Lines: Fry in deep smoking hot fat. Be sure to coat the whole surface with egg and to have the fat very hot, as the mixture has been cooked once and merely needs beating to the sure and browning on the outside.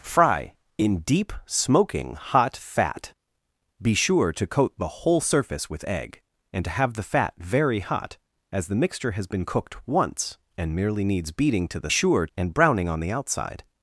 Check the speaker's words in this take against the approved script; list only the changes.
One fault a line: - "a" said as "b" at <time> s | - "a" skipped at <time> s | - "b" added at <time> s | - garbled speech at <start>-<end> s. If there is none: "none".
none